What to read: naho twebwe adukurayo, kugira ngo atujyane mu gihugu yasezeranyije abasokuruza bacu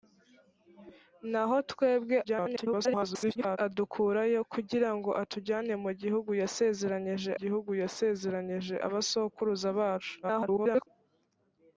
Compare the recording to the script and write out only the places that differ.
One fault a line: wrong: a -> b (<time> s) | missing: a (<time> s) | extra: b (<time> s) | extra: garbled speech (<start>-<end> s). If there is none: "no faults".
extra: garbled speech (2.2-3.6 s)
extra: gihugu yasezeranyije (7.4 s)
extra: garbled speech (10.2-10.9 s)